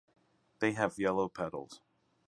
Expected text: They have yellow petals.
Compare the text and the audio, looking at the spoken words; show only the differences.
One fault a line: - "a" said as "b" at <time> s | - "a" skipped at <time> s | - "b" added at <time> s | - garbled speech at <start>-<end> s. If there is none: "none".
none